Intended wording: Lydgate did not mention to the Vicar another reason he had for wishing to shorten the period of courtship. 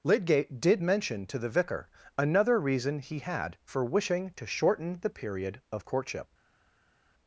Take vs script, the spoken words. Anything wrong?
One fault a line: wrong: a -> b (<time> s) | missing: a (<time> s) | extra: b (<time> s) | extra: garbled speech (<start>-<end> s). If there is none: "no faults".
missing: not (0.8 s)